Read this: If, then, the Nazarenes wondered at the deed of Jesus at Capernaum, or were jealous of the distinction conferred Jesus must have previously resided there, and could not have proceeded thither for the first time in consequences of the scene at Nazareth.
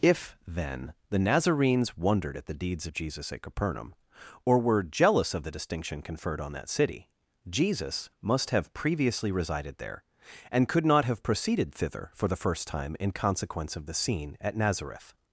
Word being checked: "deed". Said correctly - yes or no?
no